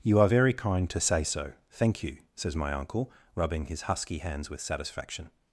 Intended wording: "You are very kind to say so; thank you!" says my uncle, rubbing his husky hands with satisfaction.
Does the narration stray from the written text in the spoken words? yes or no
no